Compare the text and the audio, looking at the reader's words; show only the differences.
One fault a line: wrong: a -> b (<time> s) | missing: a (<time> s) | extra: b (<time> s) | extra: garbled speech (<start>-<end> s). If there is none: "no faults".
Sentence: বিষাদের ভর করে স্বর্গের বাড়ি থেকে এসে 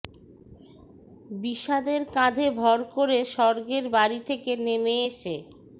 extra: কাঁধে (2.1 s)
extra: নেমে (4.6 s)